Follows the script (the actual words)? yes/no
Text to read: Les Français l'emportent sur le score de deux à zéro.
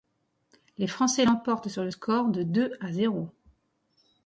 yes